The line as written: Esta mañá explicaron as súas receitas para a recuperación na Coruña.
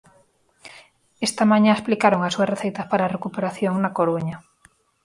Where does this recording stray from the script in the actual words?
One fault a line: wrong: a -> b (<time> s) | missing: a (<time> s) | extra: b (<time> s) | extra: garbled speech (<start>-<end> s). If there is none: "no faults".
no faults